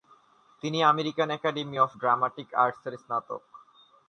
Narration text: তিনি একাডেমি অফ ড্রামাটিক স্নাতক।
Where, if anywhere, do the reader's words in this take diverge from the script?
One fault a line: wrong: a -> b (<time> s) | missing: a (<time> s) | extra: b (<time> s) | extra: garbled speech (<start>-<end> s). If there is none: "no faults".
extra: আমেরিকান (0.8 s)
extra: আর্টসের (2.5 s)